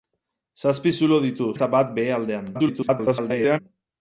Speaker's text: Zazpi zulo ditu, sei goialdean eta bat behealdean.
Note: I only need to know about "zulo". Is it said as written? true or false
true